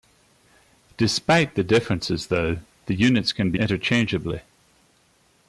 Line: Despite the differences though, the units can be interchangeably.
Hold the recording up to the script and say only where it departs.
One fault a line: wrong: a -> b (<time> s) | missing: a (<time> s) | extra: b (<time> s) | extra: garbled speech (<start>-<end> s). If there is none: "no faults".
no faults